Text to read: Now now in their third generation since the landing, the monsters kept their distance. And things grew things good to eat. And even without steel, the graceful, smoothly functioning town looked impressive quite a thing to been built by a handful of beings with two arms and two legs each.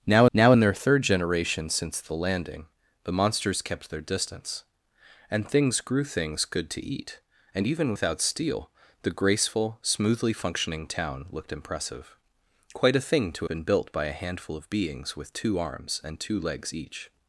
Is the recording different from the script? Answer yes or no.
no